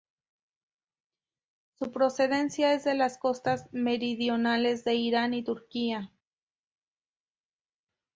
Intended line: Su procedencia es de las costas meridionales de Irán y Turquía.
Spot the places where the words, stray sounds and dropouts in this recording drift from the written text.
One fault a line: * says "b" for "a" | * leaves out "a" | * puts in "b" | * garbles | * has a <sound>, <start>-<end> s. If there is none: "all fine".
all fine